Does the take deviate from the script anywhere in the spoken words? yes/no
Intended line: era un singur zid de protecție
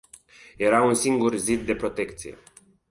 no